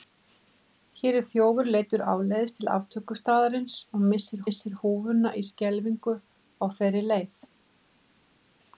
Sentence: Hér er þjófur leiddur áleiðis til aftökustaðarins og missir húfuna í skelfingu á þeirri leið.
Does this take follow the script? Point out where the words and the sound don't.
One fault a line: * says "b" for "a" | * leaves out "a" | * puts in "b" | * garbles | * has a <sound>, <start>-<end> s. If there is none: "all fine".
* puts in "missir"